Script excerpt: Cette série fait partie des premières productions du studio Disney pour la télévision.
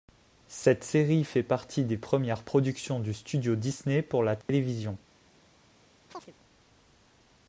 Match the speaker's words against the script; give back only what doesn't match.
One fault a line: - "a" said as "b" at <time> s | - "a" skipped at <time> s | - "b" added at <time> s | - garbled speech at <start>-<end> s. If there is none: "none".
none